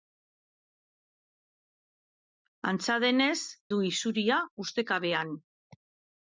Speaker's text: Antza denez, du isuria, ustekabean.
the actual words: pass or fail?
pass